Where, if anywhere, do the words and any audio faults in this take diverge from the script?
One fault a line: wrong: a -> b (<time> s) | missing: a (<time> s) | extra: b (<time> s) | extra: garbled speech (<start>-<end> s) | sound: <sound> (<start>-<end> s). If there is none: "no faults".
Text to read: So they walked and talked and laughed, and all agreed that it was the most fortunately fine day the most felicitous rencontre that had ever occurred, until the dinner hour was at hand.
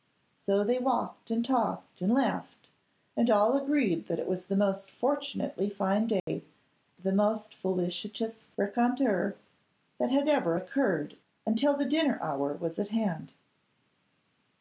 sound: dropout (6.2-6.3 s)